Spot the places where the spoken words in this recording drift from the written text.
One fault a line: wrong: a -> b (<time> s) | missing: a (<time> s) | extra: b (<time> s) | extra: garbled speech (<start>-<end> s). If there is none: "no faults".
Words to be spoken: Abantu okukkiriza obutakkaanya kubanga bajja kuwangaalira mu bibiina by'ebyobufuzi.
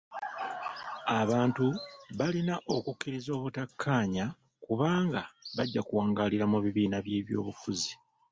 extra: balina (2.2 s)